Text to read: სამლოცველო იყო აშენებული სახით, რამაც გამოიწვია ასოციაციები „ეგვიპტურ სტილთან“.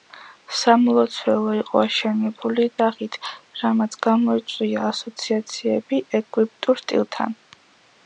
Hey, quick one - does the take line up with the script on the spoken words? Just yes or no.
yes